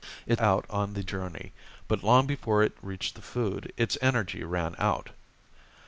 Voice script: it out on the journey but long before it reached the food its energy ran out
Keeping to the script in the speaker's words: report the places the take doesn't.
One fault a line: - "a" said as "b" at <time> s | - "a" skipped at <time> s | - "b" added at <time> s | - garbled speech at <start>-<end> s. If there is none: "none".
none